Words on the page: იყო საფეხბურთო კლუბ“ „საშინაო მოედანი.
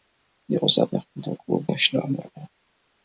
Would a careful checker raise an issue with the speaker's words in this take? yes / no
no